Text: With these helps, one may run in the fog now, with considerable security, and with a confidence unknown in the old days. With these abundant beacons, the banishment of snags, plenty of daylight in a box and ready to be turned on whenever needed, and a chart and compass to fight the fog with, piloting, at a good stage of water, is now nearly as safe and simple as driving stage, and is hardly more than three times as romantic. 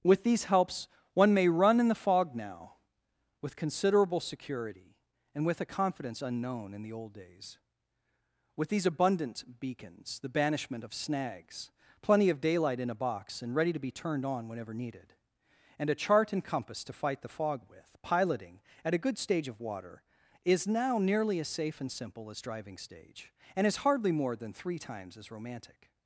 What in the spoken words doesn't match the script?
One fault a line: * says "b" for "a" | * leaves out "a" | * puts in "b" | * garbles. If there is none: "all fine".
all fine